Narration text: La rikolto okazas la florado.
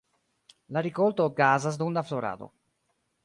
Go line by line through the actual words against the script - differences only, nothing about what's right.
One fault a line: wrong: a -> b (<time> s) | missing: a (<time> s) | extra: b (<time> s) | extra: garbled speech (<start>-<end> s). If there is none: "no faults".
extra: dum (1.8 s)